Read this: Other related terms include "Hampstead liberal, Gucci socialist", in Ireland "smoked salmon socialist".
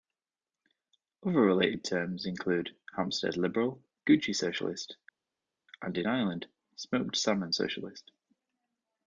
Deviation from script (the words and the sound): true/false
true